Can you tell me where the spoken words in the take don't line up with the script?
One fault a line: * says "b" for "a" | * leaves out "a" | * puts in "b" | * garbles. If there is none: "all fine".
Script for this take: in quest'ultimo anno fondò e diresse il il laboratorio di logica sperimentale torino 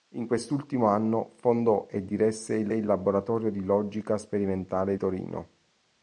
all fine